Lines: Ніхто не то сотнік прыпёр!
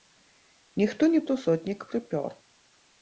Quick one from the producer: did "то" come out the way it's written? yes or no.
yes